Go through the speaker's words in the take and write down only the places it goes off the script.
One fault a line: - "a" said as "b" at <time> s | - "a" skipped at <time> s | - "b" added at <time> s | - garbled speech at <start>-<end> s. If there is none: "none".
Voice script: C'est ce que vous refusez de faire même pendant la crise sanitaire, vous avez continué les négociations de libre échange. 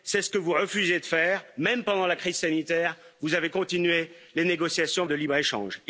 none